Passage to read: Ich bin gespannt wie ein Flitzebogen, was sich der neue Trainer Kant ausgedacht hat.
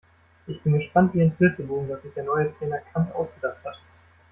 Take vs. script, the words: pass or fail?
pass